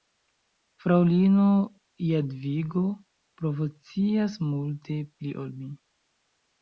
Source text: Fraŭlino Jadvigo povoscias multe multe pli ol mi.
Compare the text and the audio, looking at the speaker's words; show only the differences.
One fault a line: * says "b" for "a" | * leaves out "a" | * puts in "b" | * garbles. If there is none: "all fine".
* leaves out "multe"